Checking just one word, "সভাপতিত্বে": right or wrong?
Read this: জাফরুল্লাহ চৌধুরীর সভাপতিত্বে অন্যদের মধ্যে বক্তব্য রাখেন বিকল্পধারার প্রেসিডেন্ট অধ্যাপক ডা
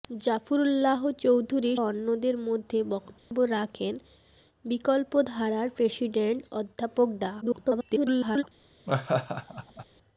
wrong